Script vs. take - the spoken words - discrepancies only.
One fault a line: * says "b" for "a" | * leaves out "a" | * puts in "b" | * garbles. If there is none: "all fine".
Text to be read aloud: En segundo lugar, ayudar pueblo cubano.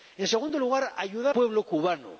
all fine